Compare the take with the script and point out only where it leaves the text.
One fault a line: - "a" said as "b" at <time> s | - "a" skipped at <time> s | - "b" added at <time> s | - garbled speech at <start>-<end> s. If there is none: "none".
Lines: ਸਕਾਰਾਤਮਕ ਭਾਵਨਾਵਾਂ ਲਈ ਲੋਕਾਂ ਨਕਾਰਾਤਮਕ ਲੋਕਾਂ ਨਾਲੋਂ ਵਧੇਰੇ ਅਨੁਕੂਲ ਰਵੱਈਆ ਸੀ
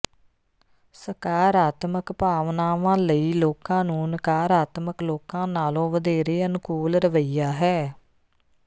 - "ਨੂੰ" added at 3.9 s
- "ਸੀ" said as "ਹੈ" at 7.5 s